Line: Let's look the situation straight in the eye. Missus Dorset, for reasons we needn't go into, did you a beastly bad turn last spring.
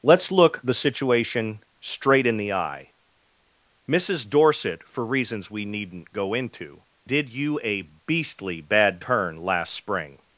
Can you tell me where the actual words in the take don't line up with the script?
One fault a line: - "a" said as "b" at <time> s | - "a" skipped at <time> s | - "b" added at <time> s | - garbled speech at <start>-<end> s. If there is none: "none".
none